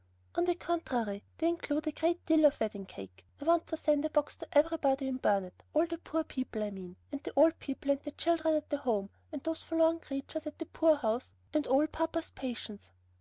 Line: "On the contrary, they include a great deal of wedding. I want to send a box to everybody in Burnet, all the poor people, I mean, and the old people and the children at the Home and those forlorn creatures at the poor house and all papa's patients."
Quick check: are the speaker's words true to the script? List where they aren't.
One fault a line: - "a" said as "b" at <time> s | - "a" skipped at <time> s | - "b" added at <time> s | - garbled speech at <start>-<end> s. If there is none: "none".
- "cake" added at 2.8 s